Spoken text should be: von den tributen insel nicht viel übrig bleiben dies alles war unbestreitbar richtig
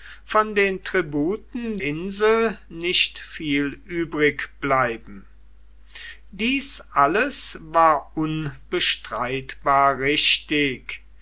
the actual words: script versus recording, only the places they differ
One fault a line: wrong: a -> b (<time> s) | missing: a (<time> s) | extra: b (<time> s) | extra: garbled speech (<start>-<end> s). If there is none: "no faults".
no faults